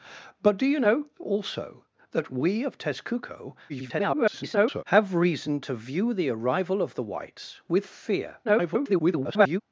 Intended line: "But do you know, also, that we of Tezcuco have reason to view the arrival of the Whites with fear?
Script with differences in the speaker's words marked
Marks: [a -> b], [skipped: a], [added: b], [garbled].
"But do you know, also, that we of Tezcuco [garbled] have reason to view the arrival of the Whites with fear? [garbled]